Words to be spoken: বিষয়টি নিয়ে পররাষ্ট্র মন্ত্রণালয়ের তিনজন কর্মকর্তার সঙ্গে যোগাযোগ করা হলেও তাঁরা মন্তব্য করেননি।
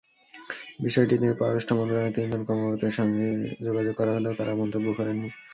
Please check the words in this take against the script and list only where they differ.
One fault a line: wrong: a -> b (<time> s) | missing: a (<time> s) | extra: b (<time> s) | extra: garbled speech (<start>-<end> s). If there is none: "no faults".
no faults